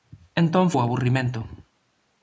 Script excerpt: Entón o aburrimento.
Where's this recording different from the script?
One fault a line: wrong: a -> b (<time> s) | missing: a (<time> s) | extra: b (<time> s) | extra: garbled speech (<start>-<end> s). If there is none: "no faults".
no faults